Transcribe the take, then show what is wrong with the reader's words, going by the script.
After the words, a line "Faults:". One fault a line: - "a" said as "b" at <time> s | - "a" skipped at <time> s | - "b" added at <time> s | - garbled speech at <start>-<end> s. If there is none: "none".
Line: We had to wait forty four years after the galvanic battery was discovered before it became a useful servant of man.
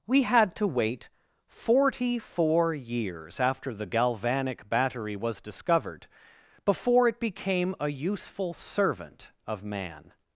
We had to wait forty four years after the galvanic battery was discovered before it became a useful servant of man.
Faults:
none